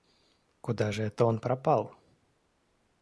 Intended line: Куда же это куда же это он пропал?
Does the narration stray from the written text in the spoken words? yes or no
yes